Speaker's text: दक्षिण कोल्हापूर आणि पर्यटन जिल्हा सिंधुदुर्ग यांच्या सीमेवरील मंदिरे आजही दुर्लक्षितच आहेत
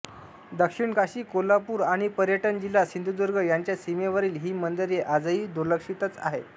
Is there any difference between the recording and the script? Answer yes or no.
yes